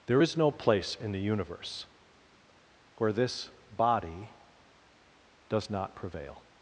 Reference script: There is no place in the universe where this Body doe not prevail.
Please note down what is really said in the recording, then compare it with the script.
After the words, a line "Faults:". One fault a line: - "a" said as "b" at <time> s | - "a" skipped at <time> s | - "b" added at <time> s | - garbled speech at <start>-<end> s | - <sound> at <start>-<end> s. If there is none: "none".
There is no place in the universe where this Body does not prevail.
Faults:
- "doe" said as "does" at 5.5 s